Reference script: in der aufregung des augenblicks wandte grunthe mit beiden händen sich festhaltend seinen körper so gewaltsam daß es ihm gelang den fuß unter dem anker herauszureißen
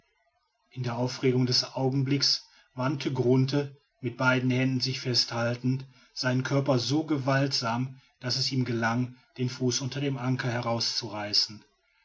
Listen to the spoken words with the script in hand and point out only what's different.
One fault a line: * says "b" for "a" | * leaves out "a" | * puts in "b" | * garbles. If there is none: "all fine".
all fine